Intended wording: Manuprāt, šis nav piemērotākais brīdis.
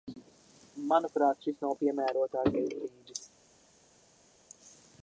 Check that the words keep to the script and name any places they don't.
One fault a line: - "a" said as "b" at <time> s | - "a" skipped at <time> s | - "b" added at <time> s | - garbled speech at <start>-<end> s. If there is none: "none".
none